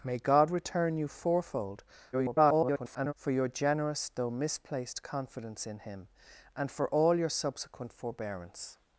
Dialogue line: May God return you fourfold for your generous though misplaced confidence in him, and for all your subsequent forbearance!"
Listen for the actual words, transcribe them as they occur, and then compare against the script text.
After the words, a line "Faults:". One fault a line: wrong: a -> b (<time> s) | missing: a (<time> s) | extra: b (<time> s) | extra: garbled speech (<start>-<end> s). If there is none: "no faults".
May God return you fourfold [garbled] for your generous though misplaced confidence in him, and for all your subsequent forbearance!"
Faults:
extra: garbled speech (2.1-3.1 s)